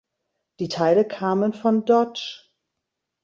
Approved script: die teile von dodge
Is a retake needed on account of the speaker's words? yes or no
yes